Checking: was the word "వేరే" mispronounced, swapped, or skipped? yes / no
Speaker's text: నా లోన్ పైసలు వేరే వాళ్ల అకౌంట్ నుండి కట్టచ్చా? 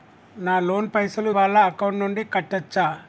yes